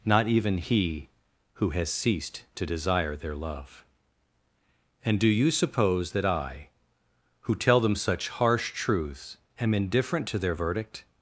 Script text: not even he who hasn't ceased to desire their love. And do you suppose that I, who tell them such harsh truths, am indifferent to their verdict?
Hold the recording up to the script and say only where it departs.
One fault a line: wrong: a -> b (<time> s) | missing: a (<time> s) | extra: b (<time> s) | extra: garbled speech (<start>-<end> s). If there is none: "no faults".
wrong: hasn't -> has (1.7 s)